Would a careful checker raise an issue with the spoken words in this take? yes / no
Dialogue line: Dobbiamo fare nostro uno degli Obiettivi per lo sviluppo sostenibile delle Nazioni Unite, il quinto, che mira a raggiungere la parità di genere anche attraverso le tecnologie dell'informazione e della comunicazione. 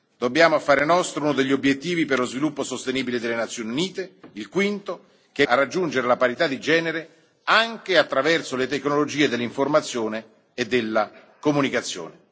yes